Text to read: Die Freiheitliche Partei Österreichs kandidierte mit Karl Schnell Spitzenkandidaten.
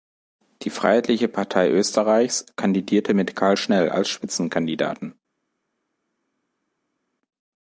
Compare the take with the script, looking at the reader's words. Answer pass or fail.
fail